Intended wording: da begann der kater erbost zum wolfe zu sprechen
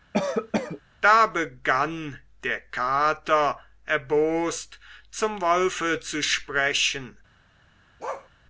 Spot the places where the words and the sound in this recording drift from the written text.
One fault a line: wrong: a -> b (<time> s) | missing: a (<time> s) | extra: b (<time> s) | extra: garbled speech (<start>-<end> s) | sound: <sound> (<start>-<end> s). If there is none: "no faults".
sound: cough (0.1-0.8 s)
sound: bark (8.0-8.3 s)